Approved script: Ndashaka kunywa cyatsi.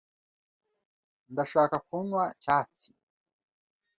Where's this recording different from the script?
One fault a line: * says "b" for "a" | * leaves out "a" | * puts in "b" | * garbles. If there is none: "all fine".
all fine